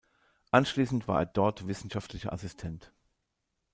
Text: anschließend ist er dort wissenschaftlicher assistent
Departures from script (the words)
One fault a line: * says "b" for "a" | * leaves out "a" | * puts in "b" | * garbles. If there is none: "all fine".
* says "war" for "ist"